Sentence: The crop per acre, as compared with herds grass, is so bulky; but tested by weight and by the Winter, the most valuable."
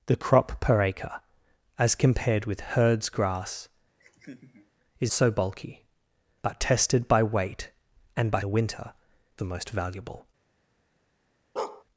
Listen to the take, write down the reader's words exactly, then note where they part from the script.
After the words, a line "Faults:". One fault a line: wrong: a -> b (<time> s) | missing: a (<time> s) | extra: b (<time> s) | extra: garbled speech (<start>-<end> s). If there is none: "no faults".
The crop per acre, as compared with herds grass, is so bulky; but tested by weight and by the Winter, the most valuable."
Faults:
no faults